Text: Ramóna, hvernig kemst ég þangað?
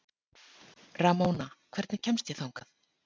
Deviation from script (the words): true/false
false